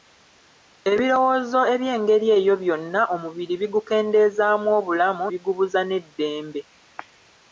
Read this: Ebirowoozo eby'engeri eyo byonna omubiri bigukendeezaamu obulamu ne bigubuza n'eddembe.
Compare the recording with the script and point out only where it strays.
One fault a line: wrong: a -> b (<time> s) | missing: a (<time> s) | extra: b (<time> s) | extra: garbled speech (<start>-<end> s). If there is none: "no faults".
missing: ne (5.2 s)